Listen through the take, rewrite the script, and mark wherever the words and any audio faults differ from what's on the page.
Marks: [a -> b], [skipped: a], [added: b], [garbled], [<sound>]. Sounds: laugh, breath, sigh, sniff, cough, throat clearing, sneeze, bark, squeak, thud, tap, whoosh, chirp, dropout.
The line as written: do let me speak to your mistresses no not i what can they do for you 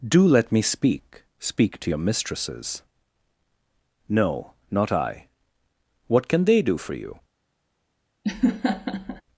do let me speak [added: speak] to your mistresses no not i what can they do for you [laugh]